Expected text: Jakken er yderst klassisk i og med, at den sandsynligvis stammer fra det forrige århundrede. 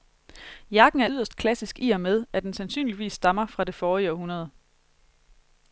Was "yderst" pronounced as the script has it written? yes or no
yes